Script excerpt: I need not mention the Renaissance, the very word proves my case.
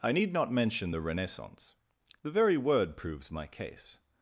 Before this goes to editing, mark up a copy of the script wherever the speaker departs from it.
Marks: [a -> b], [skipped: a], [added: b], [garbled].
I need not mention the Renaissance, the very word proves my case.